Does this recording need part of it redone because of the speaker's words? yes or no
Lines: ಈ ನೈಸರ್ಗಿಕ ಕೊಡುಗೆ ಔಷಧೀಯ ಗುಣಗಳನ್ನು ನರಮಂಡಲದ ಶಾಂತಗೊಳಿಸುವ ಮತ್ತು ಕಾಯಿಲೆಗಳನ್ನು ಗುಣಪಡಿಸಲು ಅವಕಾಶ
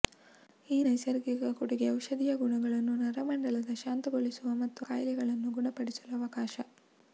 no